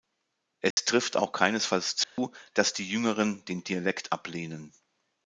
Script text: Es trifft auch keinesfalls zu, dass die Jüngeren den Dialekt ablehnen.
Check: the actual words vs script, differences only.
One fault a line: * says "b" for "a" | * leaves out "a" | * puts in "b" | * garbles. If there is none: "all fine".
all fine